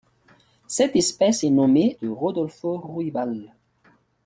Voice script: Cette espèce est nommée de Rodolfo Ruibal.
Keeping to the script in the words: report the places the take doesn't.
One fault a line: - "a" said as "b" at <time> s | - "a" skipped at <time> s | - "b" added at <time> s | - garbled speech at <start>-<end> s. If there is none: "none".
none